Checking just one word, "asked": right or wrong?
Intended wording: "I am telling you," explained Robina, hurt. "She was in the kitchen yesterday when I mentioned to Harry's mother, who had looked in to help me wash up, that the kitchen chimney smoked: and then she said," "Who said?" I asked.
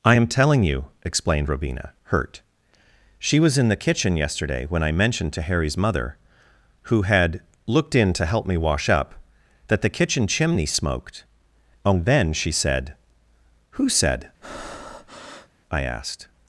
right